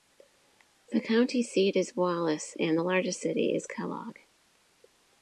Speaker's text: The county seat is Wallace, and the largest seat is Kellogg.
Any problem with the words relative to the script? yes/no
yes